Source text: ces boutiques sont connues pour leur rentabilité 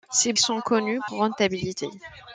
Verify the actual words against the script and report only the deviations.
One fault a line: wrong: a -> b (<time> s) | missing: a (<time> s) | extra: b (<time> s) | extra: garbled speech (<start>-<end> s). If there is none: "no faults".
missing: boutiques (0.3 s)
missing: pour leur (1.0 s)